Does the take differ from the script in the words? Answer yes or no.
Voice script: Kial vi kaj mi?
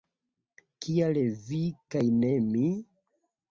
yes